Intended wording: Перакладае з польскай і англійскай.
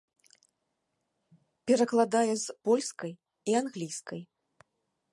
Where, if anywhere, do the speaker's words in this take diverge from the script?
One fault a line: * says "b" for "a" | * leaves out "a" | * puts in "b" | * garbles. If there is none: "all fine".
all fine